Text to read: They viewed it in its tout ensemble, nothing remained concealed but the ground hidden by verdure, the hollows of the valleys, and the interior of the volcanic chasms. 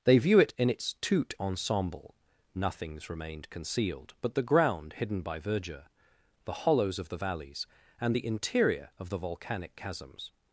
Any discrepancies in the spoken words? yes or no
yes